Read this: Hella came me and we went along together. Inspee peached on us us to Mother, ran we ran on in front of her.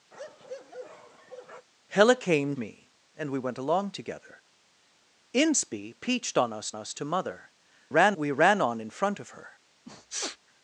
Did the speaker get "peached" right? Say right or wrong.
right